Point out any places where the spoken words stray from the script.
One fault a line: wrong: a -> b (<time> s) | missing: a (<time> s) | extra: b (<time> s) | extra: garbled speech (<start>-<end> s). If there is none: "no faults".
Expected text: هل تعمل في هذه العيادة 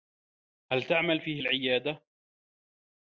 missing: هذه (1.4 s)